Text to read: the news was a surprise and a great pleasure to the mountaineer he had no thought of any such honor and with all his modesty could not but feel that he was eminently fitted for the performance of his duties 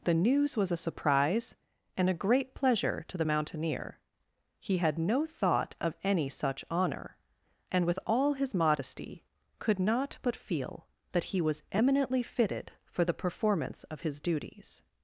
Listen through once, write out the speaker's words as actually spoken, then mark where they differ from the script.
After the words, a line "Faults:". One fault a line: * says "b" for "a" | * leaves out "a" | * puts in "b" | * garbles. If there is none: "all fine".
the news was a surprise and a great pleasure to the mountaineer he had no thought of any such honor and with all his modesty could not but feel that he was eminently fitted for the performance of his duties
Faults:
all fine